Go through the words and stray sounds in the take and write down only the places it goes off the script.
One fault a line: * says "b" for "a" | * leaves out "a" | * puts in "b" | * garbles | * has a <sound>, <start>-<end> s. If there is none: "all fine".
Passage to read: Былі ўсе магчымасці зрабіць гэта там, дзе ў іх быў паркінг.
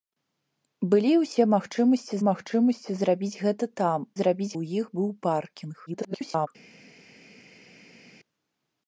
* puts in "магчымасці"
* says "зрабіць" for "дзе"
* garbles